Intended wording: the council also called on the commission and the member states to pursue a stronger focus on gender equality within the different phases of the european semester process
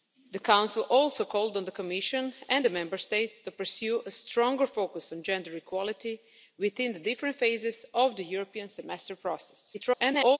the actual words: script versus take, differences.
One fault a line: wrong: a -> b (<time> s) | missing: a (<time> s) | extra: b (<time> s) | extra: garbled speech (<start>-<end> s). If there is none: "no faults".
extra: garbled speech (9.7-10.4 s)